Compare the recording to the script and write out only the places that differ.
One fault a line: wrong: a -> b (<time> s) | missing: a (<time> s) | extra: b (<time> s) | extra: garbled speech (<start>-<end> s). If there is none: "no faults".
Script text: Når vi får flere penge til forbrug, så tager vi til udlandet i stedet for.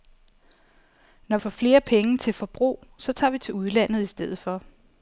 missing: vi (1.4 s)